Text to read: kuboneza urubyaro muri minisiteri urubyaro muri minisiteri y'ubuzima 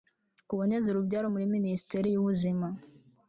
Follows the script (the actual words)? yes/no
no